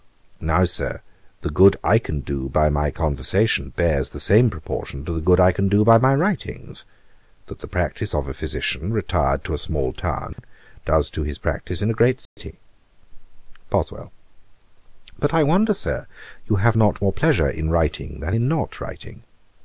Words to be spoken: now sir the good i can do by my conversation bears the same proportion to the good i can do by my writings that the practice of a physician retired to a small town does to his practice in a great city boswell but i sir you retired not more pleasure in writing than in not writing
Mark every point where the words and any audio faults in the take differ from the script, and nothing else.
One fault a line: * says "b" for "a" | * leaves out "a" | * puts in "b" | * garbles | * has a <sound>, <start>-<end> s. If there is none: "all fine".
* has a dropout, 10.3-10.4 s
* has a dropout, 12.3-12.4 s
* puts in "wonder"
* says "have" for "retired"